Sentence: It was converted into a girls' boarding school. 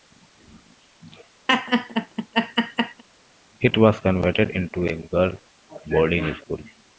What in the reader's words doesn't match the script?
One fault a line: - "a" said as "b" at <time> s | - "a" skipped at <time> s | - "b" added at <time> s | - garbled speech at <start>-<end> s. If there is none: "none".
none